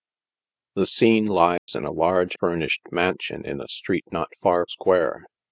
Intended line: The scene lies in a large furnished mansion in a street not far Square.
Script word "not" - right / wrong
right